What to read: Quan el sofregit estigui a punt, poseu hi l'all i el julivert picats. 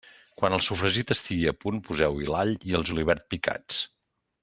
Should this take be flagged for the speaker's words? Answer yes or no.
no